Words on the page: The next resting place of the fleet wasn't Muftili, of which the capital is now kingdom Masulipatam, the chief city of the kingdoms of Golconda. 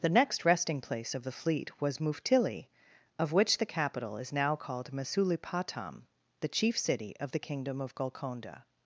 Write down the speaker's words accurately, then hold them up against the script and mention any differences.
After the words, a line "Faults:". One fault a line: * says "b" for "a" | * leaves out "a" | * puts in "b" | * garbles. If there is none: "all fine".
The next resting place of the fleet was Muftili, of which the capital is now called Masulipatam, the chief city of the kingdom of Golconda.
Faults:
* says "was" for "wasn't"
* says "called" for "kingdom"
* says "kingdom" for "kingdoms"